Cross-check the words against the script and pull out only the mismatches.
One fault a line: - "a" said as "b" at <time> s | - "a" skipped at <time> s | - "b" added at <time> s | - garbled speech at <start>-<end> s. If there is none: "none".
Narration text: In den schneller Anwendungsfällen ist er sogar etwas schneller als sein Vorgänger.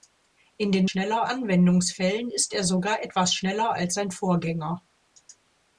none